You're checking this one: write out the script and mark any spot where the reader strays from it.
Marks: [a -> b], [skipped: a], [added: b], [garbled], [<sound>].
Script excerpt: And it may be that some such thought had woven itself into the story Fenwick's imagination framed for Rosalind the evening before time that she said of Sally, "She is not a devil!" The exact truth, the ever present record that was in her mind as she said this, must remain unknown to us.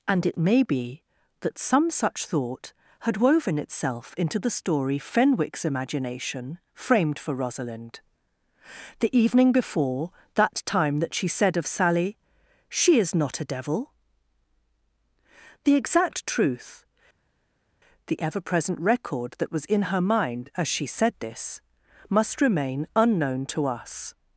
And it may be that some such thought had woven itself into the story Fenwick's imagination framed for Rosalind the evening before [added: that] time that she said of Sally, "She is not a devil!" The exact truth, the ever present record that was in her mind as she said this, must remain unknown to us.